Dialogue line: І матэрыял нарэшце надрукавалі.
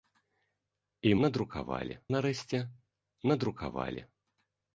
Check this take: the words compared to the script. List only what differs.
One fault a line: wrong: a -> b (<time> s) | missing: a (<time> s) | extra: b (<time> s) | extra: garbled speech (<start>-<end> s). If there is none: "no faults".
wrong: матэрыял -> надрукавалі (1.3 s)